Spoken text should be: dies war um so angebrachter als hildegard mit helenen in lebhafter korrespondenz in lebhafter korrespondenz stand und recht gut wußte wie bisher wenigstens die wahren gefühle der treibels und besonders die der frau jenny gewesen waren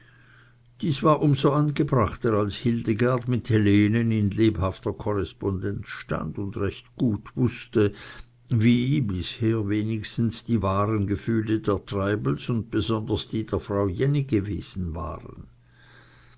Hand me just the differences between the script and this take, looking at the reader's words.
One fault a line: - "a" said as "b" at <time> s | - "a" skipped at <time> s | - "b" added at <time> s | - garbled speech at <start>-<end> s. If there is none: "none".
- "in lebhafter korrespondenz" skipped at 5.8 s